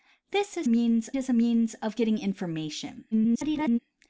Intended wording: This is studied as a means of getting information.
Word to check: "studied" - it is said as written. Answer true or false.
false